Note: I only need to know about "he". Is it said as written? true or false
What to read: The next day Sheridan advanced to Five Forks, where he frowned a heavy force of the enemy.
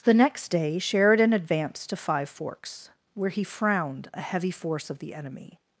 true